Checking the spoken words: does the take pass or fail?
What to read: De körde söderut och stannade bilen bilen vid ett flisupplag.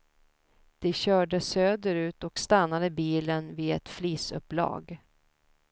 fail